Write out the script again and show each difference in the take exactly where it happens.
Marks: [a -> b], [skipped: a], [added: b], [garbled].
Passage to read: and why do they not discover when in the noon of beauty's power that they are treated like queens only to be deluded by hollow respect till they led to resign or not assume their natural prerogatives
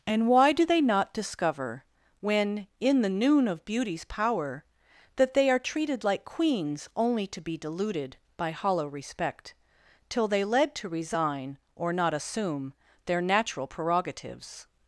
and why do they not discover when in the noon of beauty's power that they are treated like queens only to be deluded by hollow respect till they led to resign or not assume their natural prerogatives